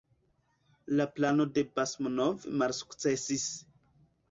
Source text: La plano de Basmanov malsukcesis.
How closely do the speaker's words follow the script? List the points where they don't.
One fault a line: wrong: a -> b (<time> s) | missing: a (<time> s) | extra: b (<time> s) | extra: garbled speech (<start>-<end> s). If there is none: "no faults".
no faults